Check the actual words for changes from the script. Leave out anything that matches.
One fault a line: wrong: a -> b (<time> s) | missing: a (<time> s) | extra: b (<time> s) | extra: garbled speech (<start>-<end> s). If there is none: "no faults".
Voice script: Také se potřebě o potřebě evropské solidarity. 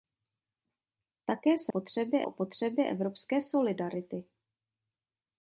no faults